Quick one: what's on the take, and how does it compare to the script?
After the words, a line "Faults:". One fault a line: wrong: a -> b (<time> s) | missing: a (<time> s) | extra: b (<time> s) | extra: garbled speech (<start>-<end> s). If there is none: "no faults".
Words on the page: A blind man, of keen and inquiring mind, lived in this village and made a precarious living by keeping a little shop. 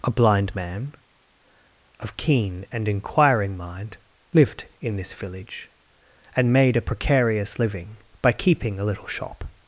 A blind man, of keen and inquiring mind, lived in this village and made a precarious living by keeping a little shop.
Faults:
no faults